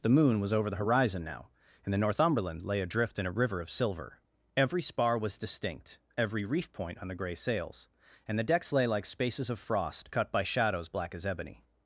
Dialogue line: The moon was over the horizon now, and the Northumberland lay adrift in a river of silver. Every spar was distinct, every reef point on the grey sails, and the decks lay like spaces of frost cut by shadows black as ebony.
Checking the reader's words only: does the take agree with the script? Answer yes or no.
yes